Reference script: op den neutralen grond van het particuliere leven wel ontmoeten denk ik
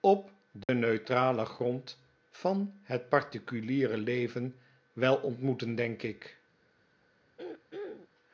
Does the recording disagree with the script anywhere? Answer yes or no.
no